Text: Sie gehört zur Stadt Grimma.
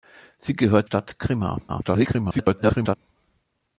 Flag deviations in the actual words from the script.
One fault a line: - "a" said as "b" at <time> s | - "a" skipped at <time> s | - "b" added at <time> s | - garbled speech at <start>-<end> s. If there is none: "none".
- "zur" skipped at 0.9 s
- garbled speech at 1.7-3.0 s